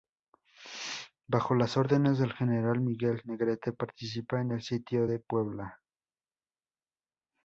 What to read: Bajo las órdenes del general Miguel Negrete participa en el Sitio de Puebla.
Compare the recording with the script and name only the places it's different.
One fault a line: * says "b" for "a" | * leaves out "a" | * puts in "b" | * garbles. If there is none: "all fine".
all fine